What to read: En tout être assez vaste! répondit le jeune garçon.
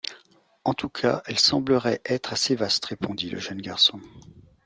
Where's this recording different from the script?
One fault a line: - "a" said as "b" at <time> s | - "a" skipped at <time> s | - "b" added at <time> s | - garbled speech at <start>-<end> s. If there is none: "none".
- "cas elle semblerait" added at 0.9 s